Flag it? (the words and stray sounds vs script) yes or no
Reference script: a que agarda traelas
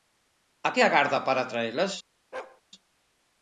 yes